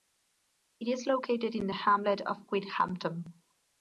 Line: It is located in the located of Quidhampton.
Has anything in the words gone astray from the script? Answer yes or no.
yes